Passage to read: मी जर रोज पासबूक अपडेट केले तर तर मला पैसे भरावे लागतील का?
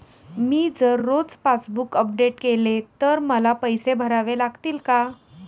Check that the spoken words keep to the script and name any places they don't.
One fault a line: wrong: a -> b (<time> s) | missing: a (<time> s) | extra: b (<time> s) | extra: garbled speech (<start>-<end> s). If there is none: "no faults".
missing: तर (3.2 s)